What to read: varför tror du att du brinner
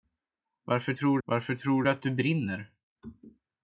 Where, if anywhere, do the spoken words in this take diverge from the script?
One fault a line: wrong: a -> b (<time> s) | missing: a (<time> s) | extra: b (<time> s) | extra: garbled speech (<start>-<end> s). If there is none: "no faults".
extra: varför tror (1.2 s)